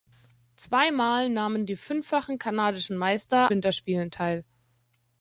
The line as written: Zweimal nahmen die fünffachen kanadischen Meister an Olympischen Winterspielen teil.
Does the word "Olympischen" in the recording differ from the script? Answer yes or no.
yes